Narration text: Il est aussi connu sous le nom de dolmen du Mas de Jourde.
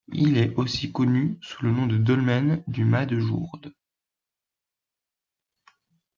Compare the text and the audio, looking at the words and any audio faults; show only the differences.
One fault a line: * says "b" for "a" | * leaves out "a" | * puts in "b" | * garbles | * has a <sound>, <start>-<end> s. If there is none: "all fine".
all fine